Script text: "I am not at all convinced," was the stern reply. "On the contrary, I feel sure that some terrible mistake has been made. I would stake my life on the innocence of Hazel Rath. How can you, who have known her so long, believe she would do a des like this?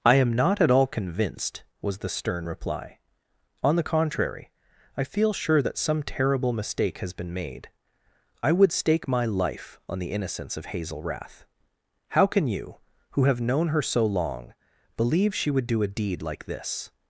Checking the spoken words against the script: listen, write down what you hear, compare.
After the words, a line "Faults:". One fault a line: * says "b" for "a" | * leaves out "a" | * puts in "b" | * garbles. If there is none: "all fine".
"I am not at all convinced," was the stern reply. "On the contrary, I feel sure that some terrible mistake has been made. I would stake my life on the innocence of Hazel Rath. How can you, who have known her so long, believe she would do a deed like this?
Faults:
* says "deed" for "des"